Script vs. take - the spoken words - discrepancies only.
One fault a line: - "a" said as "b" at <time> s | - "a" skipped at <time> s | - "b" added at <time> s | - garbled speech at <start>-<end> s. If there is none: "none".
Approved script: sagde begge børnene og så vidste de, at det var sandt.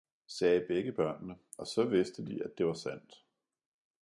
none